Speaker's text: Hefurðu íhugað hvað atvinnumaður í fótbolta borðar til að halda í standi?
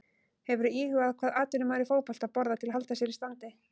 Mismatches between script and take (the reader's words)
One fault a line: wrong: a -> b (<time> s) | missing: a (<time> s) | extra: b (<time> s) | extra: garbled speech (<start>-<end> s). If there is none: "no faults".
extra: sér (3.0 s)